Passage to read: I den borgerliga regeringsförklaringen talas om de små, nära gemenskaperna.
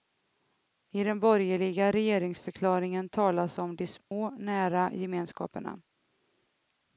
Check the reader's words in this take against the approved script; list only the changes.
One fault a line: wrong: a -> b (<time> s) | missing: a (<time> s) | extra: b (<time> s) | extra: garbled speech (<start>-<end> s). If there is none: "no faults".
no faults